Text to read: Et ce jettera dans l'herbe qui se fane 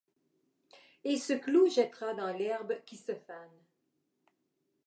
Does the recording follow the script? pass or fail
fail